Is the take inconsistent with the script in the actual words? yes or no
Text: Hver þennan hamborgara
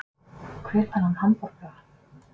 no